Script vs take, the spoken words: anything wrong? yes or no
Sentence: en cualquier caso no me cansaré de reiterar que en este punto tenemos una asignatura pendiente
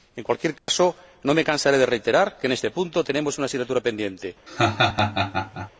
no